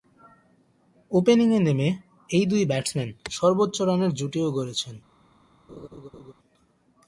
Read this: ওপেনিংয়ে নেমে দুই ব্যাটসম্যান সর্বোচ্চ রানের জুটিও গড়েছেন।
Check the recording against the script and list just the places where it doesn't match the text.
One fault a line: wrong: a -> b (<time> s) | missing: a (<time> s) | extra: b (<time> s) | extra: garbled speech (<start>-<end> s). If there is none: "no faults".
extra: এই (2.3 s)